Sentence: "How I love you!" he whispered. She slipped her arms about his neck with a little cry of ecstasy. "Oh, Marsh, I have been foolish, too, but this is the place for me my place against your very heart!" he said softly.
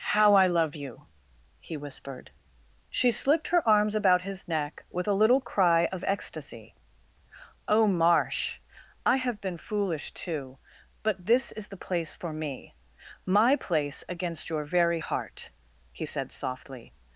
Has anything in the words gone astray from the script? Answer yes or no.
no